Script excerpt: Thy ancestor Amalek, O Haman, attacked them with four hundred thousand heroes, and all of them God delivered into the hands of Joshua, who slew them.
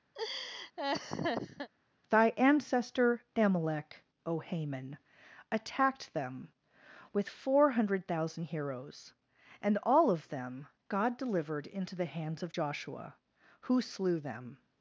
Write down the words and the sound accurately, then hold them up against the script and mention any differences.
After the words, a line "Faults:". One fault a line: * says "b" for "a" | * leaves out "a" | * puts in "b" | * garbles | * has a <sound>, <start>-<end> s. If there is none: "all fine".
Thy ancestor Amalek, O Haman, attacked them with four hundred thousand heroes, and all of them God delivered into the hands of Joshua, who slew them.
Faults:
* has a laugh, 0.1-1.7 s